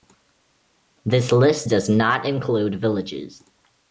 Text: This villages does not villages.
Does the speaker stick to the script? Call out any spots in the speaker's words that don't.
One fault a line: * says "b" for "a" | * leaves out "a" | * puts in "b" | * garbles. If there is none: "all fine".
* says "list" for "villages"
* puts in "include"